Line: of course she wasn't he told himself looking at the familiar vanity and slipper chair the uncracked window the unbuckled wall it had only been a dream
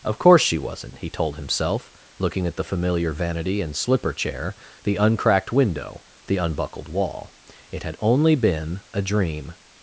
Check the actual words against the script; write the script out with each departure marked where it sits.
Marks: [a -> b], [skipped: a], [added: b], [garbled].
of course she wasn't he told himself looking at the familiar vanity and slipper chair the uncracked window the unbuckled wall it had only been a dream